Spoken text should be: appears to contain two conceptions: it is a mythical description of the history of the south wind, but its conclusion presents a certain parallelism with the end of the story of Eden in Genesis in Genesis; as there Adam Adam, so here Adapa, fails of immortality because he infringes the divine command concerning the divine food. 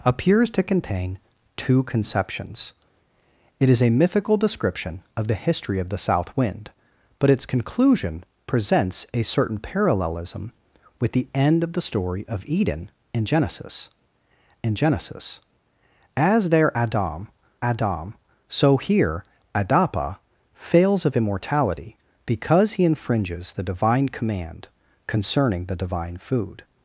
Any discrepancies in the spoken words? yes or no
no